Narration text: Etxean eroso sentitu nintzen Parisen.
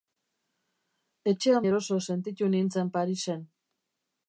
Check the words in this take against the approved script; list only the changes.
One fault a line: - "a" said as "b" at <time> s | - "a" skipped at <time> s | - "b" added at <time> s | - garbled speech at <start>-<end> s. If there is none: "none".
none